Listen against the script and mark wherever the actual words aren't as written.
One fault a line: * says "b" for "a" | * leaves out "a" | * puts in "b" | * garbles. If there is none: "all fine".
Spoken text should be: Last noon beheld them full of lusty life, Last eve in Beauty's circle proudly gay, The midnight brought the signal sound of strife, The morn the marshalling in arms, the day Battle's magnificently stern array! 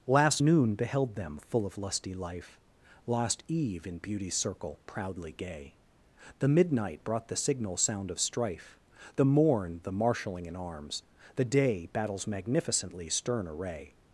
all fine